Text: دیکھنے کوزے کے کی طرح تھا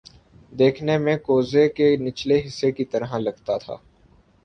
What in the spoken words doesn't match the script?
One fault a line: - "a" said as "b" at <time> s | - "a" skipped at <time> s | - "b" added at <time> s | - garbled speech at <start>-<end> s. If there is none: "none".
- "میں" added at 1.0 s
- "نچلے حصے" added at 2.0 s
- "لگتا" added at 3.2 s